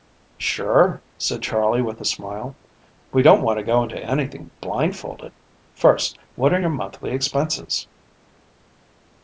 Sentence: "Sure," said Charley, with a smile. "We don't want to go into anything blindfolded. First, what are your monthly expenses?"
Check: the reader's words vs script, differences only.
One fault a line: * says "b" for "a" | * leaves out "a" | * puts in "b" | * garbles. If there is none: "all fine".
all fine